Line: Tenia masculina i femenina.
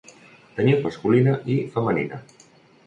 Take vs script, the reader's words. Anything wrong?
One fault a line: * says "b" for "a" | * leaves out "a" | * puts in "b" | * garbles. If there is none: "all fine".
all fine